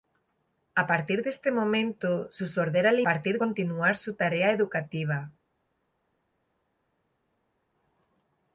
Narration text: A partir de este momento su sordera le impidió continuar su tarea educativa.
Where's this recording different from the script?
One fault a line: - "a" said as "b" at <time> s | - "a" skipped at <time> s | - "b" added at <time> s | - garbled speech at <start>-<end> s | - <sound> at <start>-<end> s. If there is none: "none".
- "impidió" said as "partir" at 3.0 s